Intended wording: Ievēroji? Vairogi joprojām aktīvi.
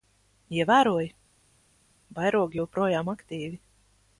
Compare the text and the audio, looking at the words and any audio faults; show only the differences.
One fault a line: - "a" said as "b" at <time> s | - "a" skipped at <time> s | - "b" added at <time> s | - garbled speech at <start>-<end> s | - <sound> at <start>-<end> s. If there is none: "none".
none